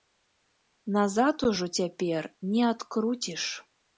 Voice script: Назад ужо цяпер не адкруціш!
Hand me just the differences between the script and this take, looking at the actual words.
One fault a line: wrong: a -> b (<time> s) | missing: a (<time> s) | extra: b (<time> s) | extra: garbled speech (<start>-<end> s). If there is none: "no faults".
no faults